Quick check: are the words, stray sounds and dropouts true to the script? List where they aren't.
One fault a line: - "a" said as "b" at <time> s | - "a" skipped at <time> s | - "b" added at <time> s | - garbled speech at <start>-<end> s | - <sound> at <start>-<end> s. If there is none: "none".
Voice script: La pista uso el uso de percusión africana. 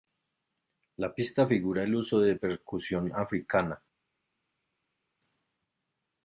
- "uso" said as "figura" at 1.4 s